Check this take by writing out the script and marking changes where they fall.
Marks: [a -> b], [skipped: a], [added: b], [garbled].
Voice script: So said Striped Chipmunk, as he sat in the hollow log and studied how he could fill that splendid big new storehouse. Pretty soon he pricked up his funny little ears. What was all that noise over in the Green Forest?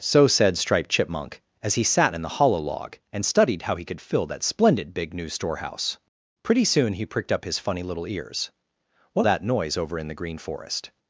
So said Striped Chipmunk, as he sat in the hollow log and studied how he could fill that splendid big new storehouse. Pretty soon he pricked up his funny little ears. What [skipped: was all] that noise over in the Green Forest?